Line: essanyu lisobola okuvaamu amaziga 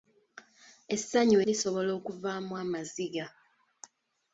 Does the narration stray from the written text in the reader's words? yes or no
no